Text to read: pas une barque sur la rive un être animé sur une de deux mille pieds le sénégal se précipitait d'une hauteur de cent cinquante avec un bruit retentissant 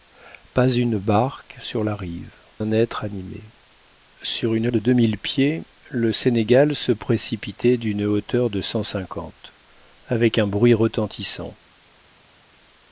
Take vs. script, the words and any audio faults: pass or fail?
pass